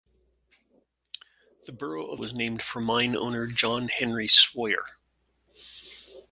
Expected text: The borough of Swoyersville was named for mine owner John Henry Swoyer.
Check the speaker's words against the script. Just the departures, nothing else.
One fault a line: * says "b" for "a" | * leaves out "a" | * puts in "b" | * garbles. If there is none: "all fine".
* leaves out "Swoyersville"